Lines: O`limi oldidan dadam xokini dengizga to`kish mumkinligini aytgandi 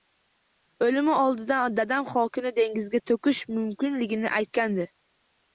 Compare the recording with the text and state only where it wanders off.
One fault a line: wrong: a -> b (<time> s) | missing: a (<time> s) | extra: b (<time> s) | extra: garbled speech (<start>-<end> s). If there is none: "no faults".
no faults